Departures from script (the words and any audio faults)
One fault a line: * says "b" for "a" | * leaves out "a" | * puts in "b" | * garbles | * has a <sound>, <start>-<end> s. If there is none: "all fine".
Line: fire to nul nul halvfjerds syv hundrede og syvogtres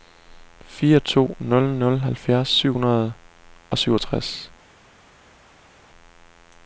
all fine